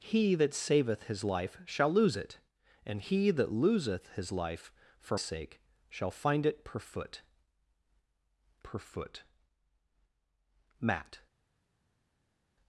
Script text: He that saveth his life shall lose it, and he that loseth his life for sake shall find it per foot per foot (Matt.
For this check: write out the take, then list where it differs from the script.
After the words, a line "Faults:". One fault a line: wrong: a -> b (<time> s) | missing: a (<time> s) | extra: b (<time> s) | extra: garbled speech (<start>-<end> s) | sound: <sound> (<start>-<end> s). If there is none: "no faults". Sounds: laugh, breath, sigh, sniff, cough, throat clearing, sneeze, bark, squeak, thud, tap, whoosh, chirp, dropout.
He that saveth his life shall lose it, and he that loseth his life for sake shall find it per foot per foot (Matt.
Faults:
no faults